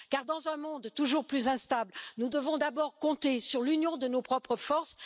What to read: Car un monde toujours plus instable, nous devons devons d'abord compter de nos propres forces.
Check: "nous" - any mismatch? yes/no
no